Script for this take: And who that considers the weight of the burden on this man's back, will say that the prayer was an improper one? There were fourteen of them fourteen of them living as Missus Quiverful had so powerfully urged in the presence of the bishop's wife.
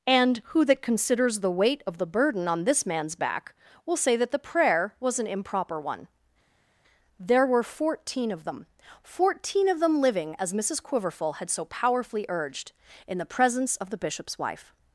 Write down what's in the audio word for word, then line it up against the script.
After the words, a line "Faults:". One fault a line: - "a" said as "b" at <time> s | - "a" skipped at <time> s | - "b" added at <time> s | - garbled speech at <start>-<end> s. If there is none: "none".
And who that considers the weight of the burden on this man's back, will say that the prayer was an improper one? There were fourteen of them fourteen of them living as Missus Quiverful had so powerfully urged in the presence of the bishop's wife.
Faults:
none